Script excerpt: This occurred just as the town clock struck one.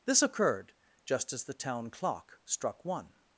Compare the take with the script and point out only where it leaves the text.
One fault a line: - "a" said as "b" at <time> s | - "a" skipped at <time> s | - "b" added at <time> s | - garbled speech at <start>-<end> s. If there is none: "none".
none